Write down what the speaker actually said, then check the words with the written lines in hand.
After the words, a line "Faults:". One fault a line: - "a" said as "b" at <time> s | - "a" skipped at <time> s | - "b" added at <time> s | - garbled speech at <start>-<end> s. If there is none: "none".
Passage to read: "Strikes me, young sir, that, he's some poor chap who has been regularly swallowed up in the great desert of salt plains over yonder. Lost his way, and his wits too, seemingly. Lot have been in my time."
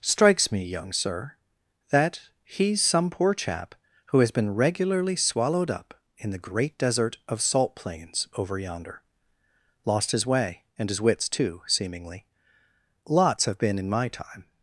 "Strikes me, young sir, that, he's some poor chap who has been regularly swallowed up in the great desert of salt plains over yonder. Lost his way, and his wits too, seemingly. Lots have been in my time."
Faults:
- "Lot" said as "Lots" at 13.0 s